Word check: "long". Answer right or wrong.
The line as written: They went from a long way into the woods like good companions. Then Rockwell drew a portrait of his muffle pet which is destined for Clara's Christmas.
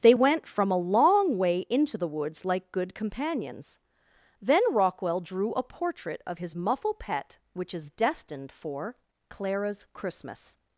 right